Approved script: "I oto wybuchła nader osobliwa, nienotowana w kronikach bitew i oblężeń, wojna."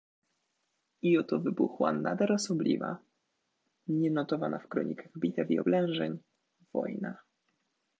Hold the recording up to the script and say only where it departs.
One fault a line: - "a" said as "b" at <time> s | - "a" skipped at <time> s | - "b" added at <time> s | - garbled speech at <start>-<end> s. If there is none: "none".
none